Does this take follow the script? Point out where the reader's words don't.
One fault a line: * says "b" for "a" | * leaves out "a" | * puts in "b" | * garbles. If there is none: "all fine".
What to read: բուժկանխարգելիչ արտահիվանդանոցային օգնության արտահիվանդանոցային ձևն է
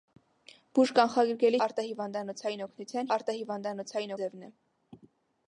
all fine